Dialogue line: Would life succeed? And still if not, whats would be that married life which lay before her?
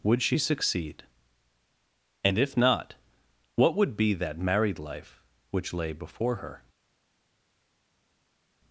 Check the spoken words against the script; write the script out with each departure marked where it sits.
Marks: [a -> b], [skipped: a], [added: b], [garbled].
Would [life -> she] succeed? And [skipped: still] if not, [whats -> what] would be that married life which lay before her?